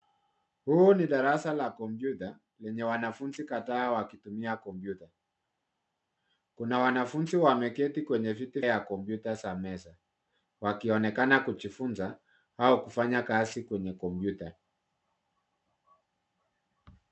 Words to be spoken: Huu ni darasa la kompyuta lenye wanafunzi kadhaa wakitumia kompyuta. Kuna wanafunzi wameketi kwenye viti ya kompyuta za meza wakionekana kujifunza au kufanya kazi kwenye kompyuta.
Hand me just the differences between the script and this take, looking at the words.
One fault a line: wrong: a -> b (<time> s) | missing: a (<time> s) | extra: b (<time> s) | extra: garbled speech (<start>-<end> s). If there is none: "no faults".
no faults